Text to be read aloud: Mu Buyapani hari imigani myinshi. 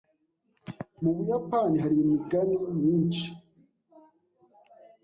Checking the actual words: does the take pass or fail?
pass